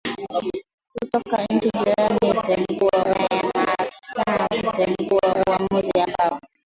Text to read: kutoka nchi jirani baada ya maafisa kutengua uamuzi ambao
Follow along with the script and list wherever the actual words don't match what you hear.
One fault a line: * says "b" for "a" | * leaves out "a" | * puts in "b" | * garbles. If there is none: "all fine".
* says "kutengua" for "baada"